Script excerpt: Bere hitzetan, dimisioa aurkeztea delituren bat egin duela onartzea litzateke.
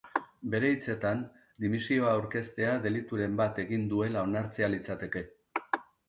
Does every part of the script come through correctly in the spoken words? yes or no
yes